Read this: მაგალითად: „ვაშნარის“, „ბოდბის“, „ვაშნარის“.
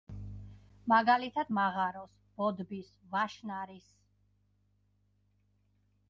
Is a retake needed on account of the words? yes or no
yes